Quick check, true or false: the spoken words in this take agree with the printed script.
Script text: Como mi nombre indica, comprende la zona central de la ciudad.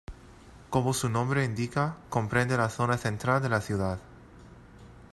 false